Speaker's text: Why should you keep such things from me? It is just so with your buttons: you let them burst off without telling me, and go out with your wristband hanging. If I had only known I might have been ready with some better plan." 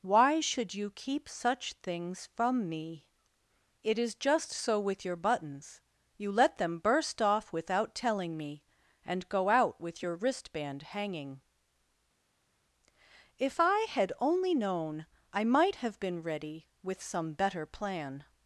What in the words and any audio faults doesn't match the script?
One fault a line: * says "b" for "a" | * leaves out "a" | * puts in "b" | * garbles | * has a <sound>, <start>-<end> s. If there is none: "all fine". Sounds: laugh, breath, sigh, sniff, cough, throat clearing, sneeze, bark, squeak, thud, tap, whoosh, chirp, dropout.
all fine